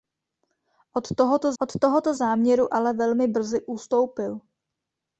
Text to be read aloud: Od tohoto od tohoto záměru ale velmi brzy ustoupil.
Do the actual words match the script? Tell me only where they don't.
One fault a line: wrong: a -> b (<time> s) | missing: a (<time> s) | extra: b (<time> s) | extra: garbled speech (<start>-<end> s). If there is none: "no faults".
no faults